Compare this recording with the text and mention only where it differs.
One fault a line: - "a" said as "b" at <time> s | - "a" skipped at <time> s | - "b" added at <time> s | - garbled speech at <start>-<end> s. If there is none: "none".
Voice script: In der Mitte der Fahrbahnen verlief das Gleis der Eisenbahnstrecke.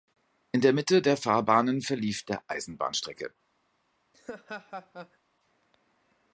- "das Gleis" skipped at 2.2 s